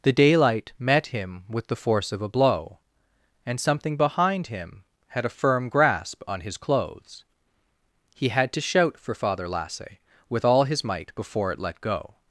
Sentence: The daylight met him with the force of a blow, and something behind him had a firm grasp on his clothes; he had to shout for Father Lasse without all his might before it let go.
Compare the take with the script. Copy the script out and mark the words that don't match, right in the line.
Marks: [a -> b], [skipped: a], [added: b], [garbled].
The daylight met him with the force of a blow, and something behind him had a firm grasp on his clothes; he had to shout for Father Lasse [without -> with] all his might before it let go.